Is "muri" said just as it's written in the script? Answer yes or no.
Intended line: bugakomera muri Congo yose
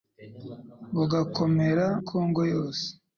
no